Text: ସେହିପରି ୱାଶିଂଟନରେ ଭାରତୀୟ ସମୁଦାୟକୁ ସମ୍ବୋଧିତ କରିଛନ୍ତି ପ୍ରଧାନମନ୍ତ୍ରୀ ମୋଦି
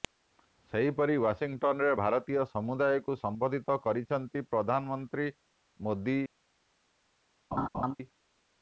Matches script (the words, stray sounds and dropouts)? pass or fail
fail